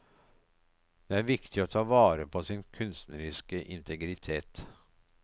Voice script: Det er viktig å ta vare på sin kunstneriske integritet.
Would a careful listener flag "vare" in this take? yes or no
no